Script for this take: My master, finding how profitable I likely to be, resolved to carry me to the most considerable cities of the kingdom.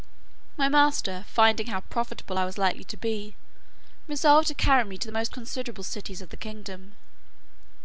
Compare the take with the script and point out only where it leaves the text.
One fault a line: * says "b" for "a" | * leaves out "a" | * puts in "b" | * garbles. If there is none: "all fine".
* puts in "was"